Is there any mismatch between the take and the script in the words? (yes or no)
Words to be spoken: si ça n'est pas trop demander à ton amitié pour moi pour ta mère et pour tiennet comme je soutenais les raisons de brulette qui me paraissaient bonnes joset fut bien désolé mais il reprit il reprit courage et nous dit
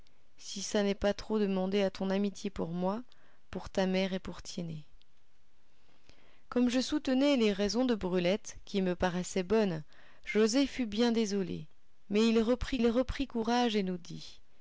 no